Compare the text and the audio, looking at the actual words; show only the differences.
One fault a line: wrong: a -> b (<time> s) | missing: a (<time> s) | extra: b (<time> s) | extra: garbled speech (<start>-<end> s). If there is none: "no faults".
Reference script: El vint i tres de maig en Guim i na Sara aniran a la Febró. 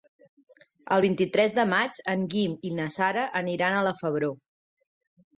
no faults